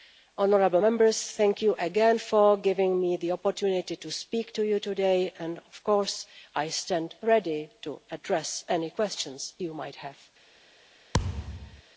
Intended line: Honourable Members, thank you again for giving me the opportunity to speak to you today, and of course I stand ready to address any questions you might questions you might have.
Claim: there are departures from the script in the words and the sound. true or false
true